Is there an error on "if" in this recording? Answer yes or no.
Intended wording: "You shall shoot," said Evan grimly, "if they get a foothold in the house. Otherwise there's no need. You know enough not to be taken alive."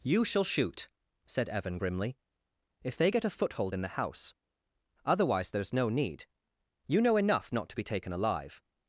no